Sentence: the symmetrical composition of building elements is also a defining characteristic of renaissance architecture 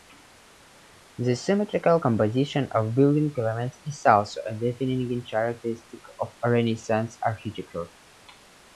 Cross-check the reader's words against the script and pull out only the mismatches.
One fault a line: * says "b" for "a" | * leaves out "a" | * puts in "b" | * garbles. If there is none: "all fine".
all fine